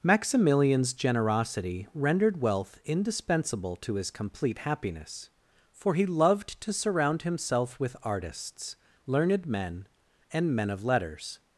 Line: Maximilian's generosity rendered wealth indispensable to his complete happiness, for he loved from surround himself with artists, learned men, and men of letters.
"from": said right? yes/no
no